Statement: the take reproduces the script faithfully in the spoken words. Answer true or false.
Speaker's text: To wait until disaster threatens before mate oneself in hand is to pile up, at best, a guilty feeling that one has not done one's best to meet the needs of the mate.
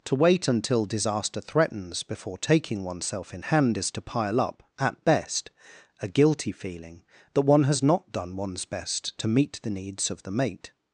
false